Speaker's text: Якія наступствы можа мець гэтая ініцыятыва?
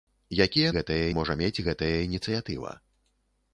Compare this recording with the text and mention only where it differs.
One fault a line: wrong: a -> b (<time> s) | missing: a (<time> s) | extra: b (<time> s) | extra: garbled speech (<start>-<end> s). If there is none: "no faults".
wrong: наступствы -> гэтая (0.8 s)